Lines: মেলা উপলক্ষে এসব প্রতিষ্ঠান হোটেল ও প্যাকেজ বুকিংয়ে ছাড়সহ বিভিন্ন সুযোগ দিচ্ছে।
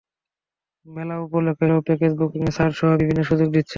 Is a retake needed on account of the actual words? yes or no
yes